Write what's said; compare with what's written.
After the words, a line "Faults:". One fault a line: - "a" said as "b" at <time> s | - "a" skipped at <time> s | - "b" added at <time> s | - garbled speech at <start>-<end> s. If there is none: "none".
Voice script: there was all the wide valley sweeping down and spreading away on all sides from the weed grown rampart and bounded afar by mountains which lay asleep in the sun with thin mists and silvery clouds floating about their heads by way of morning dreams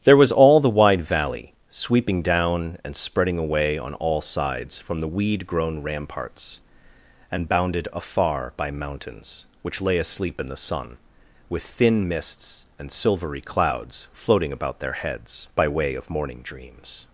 there was all the wide valley sweeping down and spreading away on all sides from the weed grown ramparts and bounded afar by mountains which lay asleep in the sun with thin mists and silvery clouds floating about their heads by way of morning dreams
Faults:
- "rampart" said as "ramparts" at 5.8 s